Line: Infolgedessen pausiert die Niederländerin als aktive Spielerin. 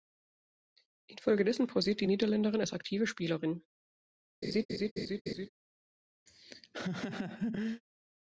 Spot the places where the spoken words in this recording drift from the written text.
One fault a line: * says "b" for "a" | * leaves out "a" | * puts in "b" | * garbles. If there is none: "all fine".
all fine